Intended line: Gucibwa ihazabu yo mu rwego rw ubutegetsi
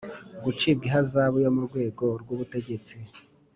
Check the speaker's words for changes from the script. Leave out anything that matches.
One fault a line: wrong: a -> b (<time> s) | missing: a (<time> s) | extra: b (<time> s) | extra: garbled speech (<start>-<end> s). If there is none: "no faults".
no faults